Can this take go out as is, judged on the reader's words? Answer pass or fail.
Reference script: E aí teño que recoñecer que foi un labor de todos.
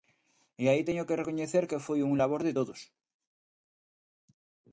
pass